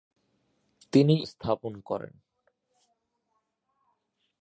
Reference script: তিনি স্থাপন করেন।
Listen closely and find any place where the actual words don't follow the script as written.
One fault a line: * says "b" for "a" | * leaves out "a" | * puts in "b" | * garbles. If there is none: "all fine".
all fine